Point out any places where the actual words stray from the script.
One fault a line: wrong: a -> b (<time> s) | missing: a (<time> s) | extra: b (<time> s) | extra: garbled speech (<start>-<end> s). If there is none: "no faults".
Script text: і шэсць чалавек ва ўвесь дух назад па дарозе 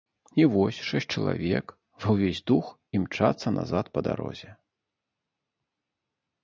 extra: вось (0.5 s)
extra: імчацца (3.0 s)